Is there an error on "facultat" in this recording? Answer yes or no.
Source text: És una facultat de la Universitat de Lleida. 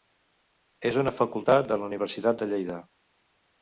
no